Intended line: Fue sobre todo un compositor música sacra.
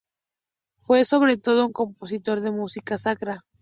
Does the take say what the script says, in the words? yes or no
no